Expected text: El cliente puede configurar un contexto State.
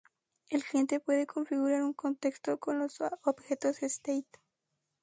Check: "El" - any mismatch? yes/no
no